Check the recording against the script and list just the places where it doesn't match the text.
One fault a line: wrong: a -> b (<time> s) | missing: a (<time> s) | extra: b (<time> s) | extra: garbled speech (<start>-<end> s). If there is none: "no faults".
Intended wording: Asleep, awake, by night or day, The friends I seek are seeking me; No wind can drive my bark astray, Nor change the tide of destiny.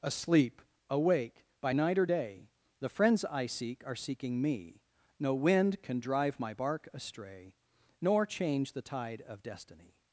no faults